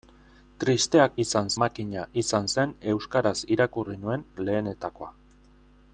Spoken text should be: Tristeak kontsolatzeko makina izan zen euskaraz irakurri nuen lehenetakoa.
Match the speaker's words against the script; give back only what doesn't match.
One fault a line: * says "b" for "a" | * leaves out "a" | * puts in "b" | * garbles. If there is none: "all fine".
* says "izan" for "kontsolatzeko"